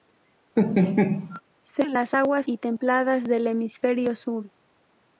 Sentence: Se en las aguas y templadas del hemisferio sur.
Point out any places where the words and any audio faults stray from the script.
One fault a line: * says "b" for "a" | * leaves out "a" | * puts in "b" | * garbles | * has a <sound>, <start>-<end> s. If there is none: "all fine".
* has a laugh, 0.6-1.4 s